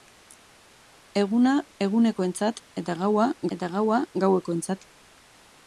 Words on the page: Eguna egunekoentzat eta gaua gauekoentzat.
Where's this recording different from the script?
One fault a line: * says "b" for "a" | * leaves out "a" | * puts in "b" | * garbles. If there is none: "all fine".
* puts in "eta gaua"